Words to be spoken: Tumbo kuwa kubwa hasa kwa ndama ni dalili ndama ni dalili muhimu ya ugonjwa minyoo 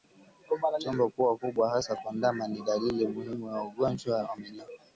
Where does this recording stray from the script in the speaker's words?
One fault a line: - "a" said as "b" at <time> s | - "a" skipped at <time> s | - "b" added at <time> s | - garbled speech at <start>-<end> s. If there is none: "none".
- "ndama ni dalili" skipped at 3.1 s
- "wa" added at 4.2 s